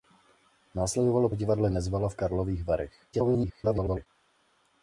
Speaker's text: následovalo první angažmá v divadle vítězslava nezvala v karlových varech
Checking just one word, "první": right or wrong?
wrong